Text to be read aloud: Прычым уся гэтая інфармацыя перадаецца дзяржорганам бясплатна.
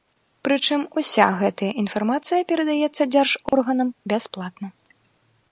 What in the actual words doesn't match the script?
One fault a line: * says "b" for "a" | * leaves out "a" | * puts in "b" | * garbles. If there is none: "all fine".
all fine